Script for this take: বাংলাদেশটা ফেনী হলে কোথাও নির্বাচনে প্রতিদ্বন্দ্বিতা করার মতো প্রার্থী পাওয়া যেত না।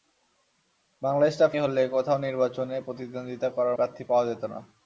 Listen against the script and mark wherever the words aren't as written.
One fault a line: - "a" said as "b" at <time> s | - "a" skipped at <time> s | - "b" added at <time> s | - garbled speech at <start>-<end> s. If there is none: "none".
- "ফেনী" skipped at 1.5 s
- "মতো" skipped at 3.8 s